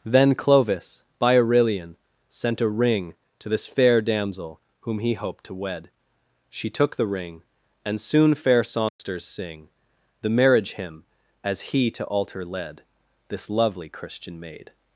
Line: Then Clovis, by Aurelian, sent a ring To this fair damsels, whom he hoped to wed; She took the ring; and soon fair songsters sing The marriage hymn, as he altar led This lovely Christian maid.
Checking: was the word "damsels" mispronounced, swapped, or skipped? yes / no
yes